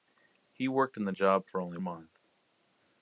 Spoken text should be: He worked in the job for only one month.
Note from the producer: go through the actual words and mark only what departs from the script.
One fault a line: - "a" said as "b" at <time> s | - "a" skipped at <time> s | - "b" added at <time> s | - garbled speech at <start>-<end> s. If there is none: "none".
- "one" skipped at 1.8 s